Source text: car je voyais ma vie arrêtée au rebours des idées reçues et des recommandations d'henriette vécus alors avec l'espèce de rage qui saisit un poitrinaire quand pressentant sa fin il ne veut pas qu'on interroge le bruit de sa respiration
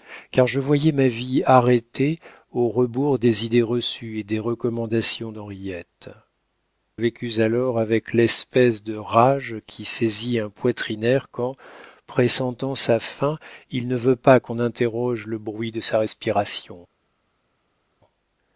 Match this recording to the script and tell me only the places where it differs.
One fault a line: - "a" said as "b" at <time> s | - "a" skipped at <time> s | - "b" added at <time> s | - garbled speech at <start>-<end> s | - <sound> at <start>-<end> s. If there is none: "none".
none